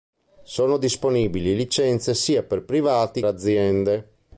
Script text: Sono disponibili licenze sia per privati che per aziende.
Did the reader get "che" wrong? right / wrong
wrong